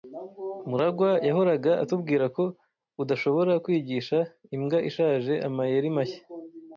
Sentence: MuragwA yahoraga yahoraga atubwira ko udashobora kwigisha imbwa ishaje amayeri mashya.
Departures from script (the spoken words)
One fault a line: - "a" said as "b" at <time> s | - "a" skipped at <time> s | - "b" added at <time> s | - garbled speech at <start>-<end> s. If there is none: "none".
- "yahoraga" skipped at 1.7 s